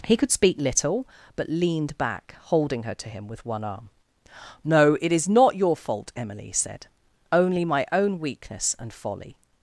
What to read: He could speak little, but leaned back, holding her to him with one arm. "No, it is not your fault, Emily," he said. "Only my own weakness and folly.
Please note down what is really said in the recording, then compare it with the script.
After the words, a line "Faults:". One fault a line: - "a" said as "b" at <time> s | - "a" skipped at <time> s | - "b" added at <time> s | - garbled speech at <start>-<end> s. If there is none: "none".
He could speak little, but leaned back, holding her to him with one arm. "No, it is not your fault, Emily," said. "Only my own weakness and folly.
Faults:
- "he" skipped at 6.5 s